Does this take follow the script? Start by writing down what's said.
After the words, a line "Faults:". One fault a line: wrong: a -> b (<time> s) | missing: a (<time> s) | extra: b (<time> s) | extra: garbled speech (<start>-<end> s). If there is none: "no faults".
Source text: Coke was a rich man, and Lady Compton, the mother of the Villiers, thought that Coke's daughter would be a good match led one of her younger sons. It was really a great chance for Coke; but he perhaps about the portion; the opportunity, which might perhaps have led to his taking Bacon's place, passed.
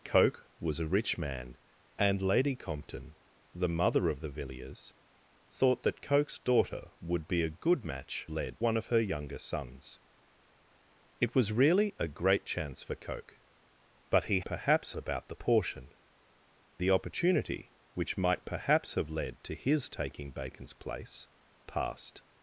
Coke was a rich man, and Lady Compton, the mother of the Villiers, thought that Coke's daughter would be a good match led one of her younger sons. It was really a great chance for Coke; but he perhaps about the portion; the opportunity, which might perhaps have led to his taking Bacon's place, passed.
Faults:
no faults